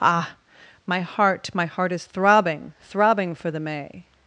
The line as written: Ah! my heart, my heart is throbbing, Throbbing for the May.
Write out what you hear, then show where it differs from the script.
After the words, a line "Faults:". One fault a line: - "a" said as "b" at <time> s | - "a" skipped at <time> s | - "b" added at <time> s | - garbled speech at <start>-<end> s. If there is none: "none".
Ah! my heart, my heart is throbbing, Throbbing for the May.
Faults:
none